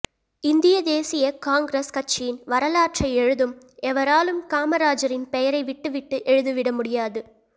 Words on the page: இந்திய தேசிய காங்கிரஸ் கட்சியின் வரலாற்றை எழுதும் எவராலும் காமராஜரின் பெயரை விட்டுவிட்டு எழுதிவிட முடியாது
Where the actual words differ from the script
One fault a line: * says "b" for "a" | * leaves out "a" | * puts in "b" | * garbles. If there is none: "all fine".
all fine